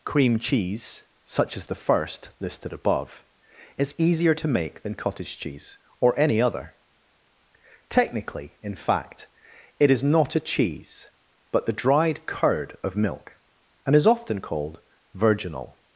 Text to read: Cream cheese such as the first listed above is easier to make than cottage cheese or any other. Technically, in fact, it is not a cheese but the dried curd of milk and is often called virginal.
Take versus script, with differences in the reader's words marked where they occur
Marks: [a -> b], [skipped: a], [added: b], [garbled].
Cream cheese such as the first listed above is easier to make than cottage cheese or any other. Technically, in fact, it is not a cheese but the dried curd of milk and is often called virginal.